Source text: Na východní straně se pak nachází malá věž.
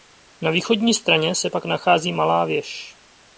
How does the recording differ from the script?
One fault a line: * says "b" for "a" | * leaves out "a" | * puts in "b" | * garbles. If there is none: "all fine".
all fine